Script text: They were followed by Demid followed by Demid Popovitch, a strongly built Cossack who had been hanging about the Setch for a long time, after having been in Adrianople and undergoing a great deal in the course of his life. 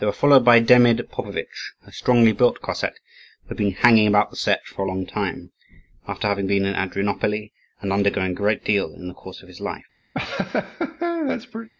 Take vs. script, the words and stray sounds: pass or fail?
fail